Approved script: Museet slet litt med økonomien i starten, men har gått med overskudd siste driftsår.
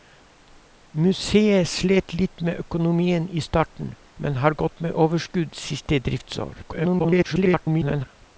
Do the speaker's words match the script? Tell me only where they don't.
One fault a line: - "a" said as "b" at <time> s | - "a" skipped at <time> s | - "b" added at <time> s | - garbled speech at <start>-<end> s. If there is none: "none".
- garbled speech at 6.6-8.1 s